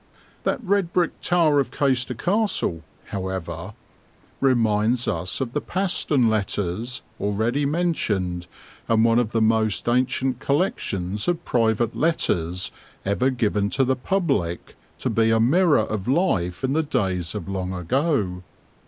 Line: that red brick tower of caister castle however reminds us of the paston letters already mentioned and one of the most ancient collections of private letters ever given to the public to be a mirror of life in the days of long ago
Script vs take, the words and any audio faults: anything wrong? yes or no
no